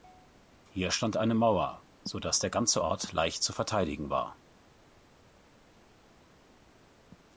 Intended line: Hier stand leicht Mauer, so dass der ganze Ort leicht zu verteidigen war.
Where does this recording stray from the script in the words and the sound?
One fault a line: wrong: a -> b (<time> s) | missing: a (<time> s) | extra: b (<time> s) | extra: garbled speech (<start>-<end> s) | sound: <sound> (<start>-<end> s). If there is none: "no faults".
wrong: leicht -> eine (1.1 s)